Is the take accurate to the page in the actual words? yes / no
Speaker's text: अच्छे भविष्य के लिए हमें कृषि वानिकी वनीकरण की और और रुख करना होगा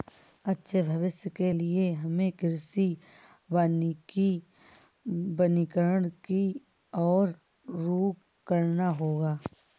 no